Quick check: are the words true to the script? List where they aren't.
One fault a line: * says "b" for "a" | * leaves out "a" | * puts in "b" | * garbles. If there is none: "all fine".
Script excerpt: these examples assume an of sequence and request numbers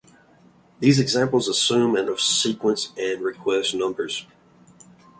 all fine